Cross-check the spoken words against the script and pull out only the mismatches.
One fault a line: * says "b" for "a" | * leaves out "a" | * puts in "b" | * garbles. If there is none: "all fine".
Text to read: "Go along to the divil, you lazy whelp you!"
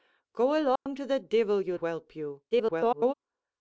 * leaves out "lazy"
* garbles